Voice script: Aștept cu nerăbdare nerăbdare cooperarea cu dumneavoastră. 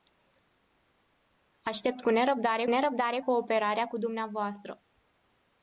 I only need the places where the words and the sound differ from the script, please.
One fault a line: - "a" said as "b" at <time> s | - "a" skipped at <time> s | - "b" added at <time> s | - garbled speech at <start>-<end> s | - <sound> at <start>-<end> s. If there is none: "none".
none